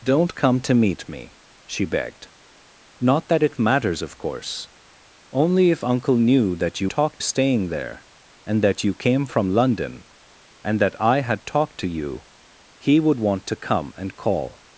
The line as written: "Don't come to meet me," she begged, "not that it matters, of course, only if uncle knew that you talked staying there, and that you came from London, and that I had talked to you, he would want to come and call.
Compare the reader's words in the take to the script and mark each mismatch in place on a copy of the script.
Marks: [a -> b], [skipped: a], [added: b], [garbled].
"Don't come to meet me," she begged, "not that it matters, of course, only if uncle knew that you talked staying there, and that you came from London, and that I had talked to you, he would want to come and call.